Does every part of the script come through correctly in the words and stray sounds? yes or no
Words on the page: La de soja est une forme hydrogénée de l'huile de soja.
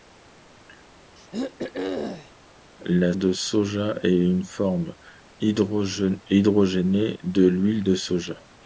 no